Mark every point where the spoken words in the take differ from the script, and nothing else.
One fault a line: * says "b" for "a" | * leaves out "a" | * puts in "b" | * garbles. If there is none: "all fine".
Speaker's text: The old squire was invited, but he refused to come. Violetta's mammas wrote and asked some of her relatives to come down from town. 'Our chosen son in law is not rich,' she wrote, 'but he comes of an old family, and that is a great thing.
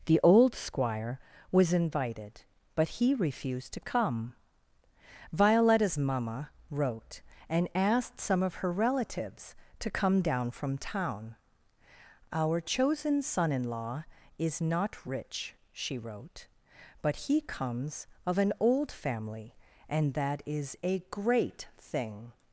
* says "mamma" for "mammas"